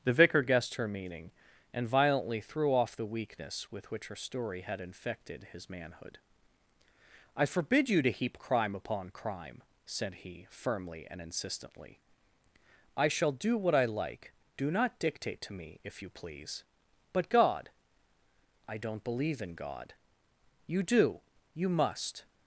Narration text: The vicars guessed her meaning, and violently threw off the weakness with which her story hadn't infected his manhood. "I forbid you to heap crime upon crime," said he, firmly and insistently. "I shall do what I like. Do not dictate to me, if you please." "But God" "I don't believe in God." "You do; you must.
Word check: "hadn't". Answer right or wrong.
wrong